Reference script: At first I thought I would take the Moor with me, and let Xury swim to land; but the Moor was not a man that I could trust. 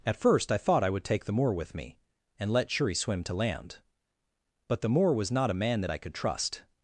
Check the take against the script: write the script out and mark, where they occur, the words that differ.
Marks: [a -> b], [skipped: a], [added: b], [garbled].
At first I thought I would take the Moor with me, and let Xury swim to land; but the Moor was not a man that I could trust.